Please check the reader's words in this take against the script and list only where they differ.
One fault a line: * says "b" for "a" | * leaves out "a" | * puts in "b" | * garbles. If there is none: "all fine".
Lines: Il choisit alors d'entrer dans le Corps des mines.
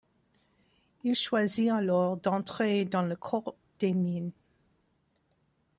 all fine